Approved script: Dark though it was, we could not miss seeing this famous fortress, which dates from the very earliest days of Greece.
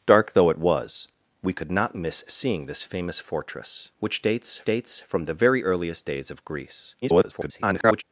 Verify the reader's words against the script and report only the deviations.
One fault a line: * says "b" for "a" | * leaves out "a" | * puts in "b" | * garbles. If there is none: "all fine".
* puts in "dates"
* garbles